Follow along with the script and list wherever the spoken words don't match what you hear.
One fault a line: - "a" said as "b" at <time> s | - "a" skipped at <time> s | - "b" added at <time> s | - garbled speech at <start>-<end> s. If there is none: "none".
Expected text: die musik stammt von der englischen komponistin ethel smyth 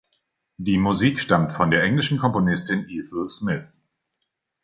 none